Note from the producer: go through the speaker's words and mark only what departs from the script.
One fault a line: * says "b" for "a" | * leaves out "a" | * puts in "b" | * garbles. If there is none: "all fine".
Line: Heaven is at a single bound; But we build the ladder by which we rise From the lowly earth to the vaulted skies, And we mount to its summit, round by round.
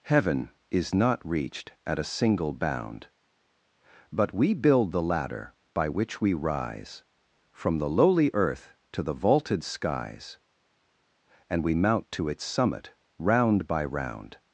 * puts in "not reached"